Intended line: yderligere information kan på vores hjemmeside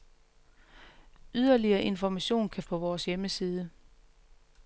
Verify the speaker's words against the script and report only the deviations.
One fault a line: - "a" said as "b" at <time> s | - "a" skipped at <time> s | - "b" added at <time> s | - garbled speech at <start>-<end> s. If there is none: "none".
none